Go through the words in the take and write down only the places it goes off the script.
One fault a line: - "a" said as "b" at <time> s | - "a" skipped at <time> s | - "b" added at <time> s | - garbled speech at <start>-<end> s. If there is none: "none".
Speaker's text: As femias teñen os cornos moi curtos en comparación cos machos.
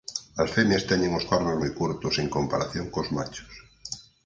none